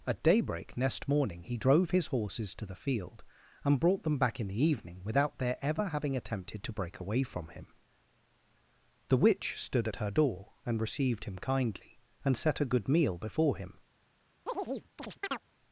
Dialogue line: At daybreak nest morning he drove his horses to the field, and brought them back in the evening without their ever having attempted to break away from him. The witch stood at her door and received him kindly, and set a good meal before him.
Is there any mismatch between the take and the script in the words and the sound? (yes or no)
yes